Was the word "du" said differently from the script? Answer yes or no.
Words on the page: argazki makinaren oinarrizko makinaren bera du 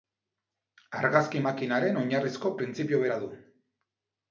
no